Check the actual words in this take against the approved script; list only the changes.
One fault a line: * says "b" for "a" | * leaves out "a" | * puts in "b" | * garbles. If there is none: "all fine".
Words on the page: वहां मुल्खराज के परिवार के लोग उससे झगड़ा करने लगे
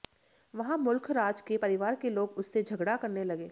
all fine